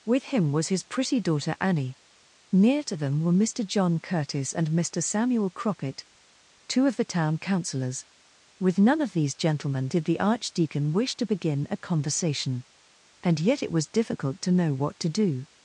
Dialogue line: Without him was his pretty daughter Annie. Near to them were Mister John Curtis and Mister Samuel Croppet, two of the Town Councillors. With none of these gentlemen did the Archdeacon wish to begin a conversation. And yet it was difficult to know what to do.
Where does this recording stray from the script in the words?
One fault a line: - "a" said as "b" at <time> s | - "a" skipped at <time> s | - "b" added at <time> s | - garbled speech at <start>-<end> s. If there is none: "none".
- "Without" said as "With" at 0.0 s